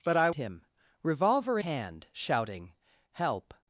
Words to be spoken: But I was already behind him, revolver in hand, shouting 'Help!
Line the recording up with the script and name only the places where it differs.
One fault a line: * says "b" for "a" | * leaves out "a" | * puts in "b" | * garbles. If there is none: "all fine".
* leaves out "was already behind"
* leaves out "in"